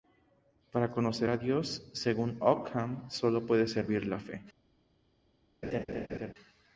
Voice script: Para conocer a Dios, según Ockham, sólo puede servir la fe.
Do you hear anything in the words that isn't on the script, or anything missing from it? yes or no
no